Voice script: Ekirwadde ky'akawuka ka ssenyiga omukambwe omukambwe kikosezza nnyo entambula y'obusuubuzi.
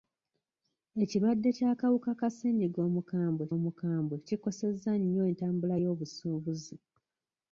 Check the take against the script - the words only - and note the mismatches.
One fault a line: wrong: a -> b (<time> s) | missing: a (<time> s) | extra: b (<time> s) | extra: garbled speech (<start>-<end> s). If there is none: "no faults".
no faults